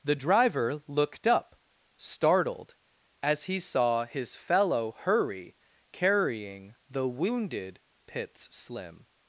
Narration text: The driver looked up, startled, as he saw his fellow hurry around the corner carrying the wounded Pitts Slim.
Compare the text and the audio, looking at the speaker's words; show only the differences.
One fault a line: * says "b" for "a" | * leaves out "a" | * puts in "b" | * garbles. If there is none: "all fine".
* leaves out "around the corner"